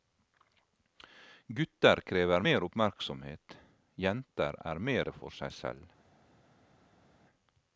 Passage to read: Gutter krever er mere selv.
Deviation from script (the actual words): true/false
true